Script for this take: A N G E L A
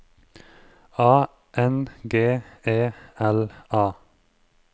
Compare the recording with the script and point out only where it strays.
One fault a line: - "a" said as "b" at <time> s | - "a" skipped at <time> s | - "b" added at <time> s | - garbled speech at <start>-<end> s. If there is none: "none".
none